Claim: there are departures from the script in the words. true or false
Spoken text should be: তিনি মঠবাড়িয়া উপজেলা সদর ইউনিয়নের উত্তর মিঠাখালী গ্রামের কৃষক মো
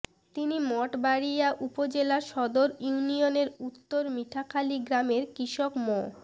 false